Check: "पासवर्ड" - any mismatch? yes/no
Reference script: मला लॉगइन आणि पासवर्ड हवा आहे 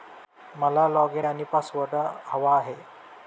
no